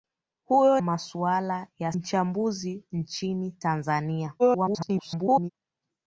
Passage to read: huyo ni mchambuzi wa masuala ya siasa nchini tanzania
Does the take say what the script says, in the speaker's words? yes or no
no